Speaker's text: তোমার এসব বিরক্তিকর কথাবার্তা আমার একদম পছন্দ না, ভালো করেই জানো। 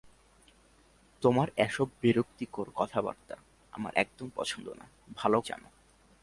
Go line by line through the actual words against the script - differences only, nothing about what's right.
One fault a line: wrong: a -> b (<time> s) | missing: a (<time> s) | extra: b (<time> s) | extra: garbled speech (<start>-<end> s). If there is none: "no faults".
missing: করেই (5.4 s)